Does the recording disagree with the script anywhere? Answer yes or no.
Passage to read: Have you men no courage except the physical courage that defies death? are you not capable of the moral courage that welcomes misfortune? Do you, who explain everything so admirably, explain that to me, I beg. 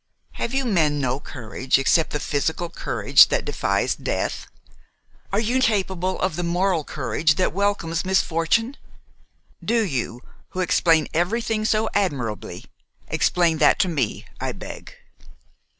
yes